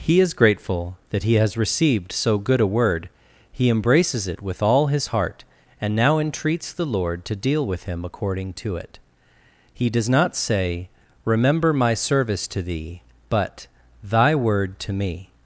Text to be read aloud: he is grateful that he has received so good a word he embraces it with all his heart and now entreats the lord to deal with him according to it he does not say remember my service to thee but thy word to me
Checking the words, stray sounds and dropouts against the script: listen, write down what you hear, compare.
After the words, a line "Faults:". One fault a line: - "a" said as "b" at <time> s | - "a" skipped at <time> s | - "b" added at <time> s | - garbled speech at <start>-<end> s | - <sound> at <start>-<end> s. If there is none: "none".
he is grateful that he has received so good a word he embraces it with all his heart and now entreats the lord to deal with him according to it he does not say remember my service to thee but thy word to me
Faults:
none